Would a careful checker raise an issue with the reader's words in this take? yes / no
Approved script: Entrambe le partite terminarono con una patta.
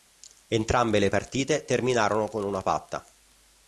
no